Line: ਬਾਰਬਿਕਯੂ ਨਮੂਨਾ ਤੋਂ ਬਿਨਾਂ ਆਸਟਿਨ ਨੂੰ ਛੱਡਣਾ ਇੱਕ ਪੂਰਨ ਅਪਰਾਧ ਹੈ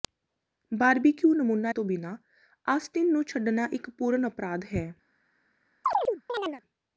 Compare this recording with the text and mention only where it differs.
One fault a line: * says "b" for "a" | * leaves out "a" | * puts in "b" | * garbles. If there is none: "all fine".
all fine